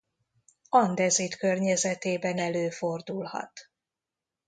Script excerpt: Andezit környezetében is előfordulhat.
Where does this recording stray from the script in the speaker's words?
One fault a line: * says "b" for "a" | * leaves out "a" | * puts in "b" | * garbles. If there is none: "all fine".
* leaves out "is"